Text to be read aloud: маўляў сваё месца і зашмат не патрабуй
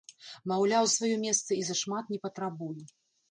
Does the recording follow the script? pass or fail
pass